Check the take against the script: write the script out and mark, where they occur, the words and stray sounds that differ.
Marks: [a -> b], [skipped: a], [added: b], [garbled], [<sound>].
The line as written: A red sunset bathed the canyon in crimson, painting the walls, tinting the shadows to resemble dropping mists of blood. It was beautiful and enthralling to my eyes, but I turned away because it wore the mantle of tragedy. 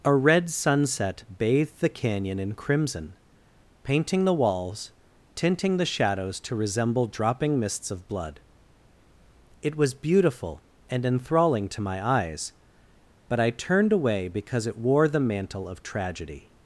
A red sunset bathed the canyon in crimson, painting the walls, tinting the shadows to resemble dropping mists of blood. It was beautiful and enthralling to my eyes, but I turned away because it wore the mantle of tragedy.